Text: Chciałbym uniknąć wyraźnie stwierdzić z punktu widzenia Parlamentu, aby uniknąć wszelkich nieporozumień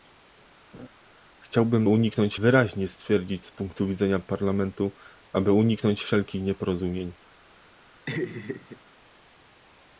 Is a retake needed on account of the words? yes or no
no